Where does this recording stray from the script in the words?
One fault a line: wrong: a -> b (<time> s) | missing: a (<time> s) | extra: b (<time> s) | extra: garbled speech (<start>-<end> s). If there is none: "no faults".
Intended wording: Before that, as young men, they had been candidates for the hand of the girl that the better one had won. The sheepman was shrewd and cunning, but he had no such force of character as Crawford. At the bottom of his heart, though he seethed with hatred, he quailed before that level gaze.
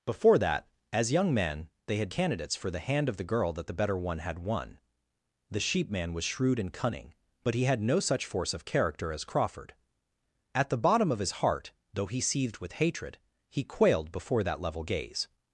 missing: been (2.1 s)